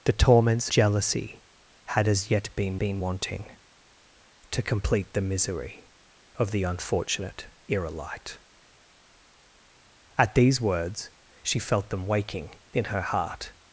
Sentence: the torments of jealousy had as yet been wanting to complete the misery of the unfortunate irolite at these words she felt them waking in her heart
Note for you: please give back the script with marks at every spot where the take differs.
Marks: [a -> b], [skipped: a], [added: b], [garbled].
the torments [skipped: of] jealousy had as yet been [added: been] wanting to complete the misery of the unfortunate irolite at these words she felt them waking in her heart